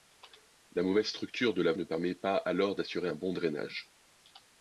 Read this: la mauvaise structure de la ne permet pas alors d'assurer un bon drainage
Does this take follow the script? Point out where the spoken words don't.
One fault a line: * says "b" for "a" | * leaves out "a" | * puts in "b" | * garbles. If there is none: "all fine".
all fine